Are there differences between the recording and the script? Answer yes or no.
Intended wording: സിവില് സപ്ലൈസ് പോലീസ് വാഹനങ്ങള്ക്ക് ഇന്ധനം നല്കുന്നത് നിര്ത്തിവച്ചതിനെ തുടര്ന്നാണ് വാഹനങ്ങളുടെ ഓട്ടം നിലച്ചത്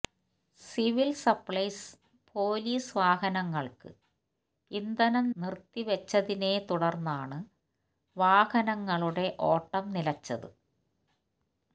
yes